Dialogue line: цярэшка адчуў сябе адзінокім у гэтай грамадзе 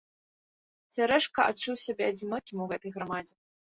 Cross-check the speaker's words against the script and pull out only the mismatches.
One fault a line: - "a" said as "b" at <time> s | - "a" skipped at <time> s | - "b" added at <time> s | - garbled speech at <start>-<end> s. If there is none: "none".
none